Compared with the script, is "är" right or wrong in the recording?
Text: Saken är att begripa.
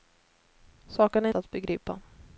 right